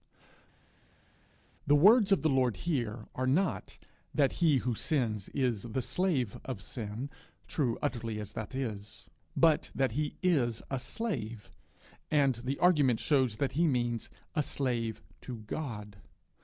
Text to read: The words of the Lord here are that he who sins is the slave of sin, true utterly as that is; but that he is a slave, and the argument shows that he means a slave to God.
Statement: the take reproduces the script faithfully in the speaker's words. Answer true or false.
false